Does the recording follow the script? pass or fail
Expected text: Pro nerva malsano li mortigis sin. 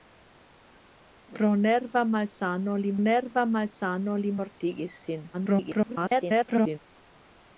fail